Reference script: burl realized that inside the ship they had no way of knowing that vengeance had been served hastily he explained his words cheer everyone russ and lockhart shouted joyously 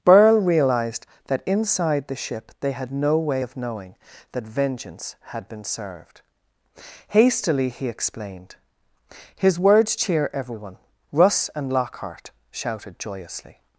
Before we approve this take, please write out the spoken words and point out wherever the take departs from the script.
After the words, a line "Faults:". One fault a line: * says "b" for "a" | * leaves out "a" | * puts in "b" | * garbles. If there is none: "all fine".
burl realized that inside the ship they had no way of knowing that vengeance had been served hastily he explained his words cheer everyone russ and lockhart shouted joyously
Faults:
all fine